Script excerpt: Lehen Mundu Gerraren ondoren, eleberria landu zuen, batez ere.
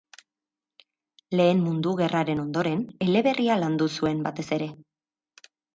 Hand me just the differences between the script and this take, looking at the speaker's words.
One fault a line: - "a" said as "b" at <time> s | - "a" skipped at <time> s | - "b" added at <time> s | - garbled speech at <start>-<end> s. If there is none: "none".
none